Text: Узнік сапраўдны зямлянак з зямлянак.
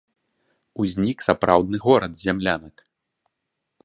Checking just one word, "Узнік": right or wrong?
right